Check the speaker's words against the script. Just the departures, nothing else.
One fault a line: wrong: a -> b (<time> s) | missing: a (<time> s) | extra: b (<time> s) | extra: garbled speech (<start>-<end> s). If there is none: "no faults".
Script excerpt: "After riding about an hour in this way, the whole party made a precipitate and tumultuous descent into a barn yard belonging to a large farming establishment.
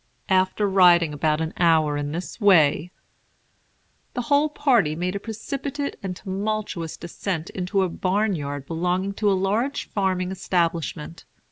no faults